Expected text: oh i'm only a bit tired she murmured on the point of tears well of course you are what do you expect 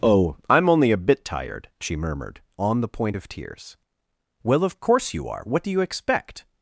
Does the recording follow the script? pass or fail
pass